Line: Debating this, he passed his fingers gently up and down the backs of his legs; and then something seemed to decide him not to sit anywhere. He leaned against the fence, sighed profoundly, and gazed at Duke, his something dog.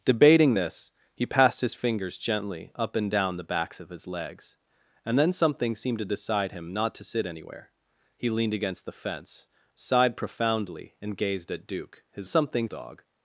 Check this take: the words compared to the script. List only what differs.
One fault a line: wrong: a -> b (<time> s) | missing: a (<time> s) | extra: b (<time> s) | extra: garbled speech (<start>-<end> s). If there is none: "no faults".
no faults